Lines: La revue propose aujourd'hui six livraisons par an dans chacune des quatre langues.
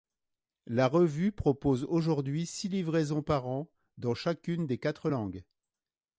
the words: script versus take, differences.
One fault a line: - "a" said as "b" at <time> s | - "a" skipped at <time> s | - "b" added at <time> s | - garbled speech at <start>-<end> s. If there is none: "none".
none